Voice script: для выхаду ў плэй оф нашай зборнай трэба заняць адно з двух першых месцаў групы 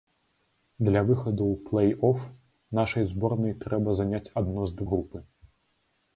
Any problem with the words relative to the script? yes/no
yes